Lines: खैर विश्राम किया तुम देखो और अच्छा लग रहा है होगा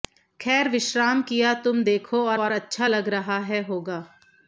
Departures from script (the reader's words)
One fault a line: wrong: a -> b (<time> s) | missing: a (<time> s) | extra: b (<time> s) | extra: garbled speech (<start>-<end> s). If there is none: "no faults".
extra: और (2.4 s)